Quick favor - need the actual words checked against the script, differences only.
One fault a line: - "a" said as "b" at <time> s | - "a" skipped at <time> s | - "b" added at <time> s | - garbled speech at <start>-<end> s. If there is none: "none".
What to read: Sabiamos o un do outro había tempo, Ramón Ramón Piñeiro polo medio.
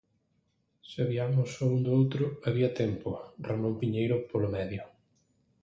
- "Ramón" skipped at 3.7 s